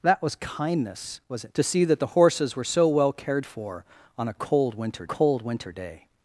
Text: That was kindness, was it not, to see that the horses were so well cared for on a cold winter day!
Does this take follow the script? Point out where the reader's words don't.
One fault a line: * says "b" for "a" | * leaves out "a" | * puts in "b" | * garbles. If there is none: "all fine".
* leaves out "not"
* puts in "cold winter"